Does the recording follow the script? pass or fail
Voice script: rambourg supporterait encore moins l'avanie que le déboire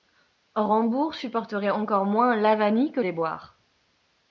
fail